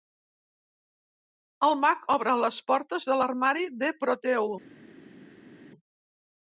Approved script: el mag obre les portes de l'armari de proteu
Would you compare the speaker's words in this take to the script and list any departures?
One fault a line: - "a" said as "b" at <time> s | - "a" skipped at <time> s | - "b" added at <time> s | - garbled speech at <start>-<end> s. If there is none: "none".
none